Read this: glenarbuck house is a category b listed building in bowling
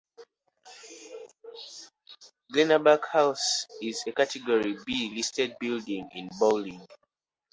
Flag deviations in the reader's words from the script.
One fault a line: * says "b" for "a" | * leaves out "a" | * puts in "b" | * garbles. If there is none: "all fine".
all fine